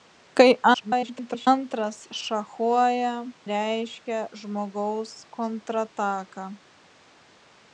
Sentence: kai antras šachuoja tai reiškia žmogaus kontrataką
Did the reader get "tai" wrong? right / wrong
wrong